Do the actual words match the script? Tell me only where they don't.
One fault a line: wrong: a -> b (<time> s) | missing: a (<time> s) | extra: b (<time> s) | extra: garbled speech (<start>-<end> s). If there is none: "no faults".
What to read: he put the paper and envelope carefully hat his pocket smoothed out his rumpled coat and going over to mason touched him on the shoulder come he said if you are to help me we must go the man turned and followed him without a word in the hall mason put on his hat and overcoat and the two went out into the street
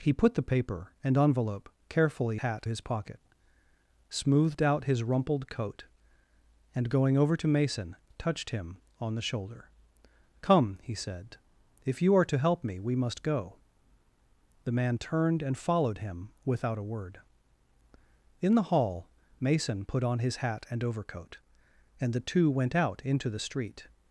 no faults